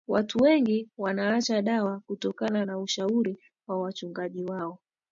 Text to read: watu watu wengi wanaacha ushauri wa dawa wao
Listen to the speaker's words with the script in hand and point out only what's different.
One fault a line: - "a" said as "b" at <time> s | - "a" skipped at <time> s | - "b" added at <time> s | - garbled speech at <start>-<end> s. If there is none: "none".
- "watu" skipped at 0.4 s
- "dawa kutokana na" added at 1.6 s
- "dawa" said as "wachungaji" at 3.8 s